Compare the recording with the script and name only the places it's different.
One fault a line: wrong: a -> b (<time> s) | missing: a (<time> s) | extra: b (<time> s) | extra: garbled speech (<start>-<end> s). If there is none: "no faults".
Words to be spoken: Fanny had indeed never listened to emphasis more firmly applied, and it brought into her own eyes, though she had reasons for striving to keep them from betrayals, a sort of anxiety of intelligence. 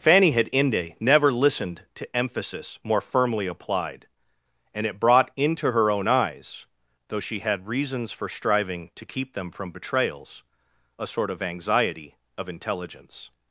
wrong: indeed -> inde (0.5 s)